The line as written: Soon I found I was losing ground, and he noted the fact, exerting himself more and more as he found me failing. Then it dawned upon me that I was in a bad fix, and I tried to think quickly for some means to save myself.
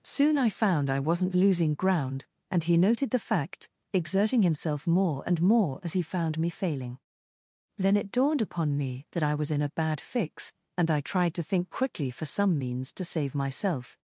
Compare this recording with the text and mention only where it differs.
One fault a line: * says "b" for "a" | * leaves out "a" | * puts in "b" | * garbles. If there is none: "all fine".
* says "wasn't" for "was"